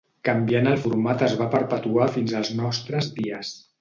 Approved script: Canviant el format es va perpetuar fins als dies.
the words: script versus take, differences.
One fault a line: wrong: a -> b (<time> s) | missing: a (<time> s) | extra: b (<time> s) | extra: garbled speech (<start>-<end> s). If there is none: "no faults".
extra: nostres (2.6 s)